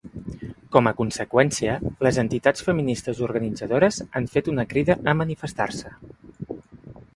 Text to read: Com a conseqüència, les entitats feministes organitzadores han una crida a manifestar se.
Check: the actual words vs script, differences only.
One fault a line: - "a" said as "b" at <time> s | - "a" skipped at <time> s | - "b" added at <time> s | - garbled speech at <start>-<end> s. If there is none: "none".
- "fet" added at 4.4 s